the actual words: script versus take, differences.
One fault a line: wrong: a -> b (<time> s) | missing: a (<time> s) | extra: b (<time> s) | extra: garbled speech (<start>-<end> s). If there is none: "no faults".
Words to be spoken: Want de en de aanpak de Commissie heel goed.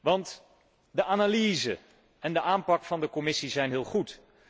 extra: analyse (1.0 s)
extra: van (2.8 s)
extra: zijn (3.5 s)